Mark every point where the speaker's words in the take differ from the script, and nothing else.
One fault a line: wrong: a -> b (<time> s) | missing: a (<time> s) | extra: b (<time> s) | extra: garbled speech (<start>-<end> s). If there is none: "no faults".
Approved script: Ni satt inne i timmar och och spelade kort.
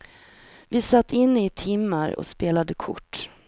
wrong: Ni -> Vi (0.7 s)
missing: och (2.3 s)